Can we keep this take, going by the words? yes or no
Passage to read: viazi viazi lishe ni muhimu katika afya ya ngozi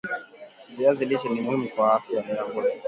no